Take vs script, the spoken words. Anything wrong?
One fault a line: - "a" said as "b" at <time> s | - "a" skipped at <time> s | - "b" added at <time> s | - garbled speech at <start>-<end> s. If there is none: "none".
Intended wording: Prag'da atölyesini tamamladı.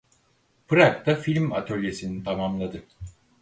- "film" added at 1.1 s